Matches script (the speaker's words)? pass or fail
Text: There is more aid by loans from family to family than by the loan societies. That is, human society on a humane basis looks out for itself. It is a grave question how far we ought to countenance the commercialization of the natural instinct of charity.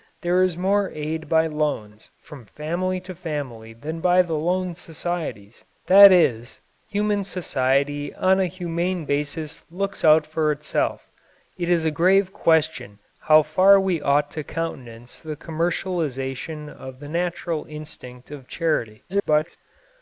fail